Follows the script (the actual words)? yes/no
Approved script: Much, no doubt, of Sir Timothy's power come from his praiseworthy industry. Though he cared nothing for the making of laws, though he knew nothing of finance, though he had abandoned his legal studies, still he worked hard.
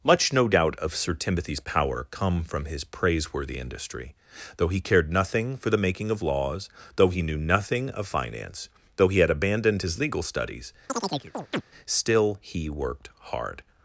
yes